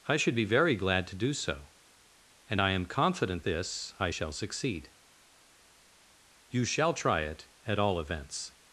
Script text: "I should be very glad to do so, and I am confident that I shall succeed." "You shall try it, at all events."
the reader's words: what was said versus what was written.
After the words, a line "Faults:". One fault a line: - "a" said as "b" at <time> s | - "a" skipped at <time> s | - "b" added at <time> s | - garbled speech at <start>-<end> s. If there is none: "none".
"I should be very glad to do so, and I am confident this I shall succeed." "You shall try it, at all events."
Faults:
- "that" said as "this" at 3.4 s